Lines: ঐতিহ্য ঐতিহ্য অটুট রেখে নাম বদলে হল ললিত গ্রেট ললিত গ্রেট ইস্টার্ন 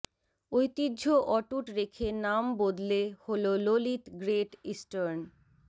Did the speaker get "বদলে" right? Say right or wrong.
right